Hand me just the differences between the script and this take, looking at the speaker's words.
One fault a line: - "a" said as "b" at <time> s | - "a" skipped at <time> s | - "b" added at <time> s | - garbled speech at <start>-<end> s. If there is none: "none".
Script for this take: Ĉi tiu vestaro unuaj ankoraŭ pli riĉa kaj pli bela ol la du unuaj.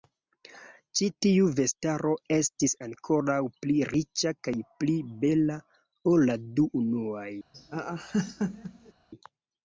- "unuaj" said as "estis" at 2.4 s